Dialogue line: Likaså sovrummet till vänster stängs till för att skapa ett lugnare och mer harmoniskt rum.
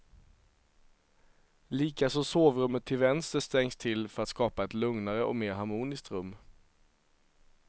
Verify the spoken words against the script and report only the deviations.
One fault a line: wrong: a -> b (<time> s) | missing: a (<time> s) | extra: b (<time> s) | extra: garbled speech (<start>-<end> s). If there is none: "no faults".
no faults